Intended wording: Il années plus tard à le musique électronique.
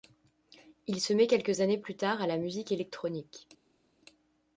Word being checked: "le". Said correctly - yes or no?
no